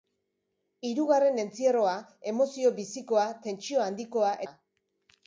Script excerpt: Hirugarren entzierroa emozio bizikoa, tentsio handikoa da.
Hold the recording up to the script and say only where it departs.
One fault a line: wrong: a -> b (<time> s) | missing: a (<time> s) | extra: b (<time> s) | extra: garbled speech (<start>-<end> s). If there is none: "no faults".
no faults